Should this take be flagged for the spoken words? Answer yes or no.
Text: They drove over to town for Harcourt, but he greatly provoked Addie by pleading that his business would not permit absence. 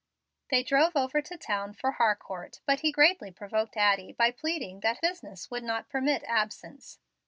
yes